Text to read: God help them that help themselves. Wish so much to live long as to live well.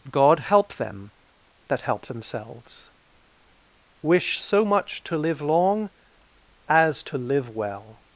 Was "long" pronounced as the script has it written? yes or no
yes